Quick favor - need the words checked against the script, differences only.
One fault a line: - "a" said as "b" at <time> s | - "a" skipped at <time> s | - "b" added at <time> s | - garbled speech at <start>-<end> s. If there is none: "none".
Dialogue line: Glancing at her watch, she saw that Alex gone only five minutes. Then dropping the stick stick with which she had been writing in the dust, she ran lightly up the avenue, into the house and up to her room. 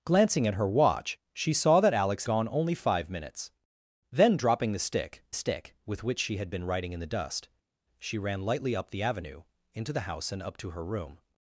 none